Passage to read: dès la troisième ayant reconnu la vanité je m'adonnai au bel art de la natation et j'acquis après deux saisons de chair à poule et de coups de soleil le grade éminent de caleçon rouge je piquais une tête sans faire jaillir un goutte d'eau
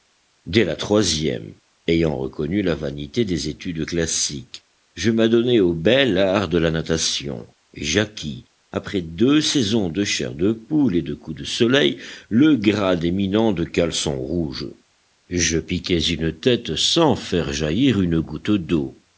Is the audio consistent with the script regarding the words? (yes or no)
no